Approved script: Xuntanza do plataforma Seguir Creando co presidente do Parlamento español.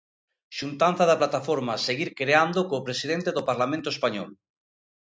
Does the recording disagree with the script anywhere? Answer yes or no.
yes